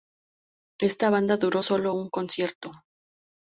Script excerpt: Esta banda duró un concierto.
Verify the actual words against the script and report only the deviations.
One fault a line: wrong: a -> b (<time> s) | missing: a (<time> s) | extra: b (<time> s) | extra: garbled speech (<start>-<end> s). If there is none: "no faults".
extra: solo (1.6 s)